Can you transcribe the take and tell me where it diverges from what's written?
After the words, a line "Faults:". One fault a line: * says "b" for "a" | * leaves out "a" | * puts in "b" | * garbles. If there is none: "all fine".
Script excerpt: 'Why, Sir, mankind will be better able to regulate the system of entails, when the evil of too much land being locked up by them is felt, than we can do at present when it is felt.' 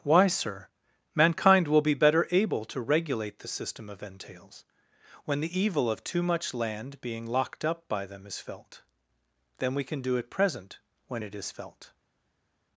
'Why, Sir, mankind will be better able to regulate the system of entails, when the evil of too much land being locked up by them is felt, than we can do at present when it is felt.'
Faults:
all fine